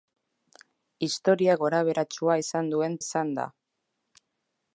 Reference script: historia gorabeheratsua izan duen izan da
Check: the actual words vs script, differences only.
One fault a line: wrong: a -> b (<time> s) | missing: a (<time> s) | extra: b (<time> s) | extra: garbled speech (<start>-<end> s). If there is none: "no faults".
no faults